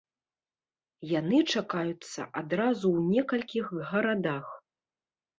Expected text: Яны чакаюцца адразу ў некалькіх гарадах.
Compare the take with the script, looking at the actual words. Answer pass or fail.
pass